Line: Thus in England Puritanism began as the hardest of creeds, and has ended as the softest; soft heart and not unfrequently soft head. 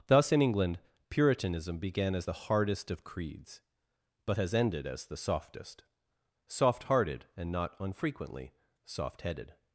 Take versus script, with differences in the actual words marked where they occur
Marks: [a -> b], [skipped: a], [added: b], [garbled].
Thus in England Puritanism began as the hardest of creeds, [and -> but] has ended as the softest; soft [heart -> hearted] and not unfrequently soft [head. -> headed]